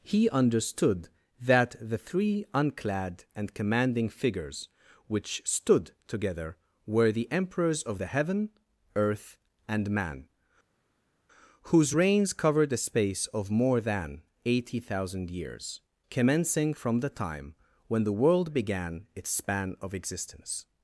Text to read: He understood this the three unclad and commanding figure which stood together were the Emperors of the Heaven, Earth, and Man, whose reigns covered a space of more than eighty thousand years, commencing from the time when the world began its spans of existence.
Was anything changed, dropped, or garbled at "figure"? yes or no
yes